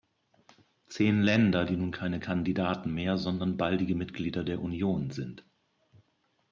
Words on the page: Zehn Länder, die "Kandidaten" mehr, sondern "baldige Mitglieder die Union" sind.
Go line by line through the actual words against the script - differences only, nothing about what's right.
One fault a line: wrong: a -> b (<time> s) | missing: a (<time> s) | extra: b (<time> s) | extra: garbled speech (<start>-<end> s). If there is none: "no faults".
extra: nun keine (1.8 s)
wrong: die -> der (4.4 s)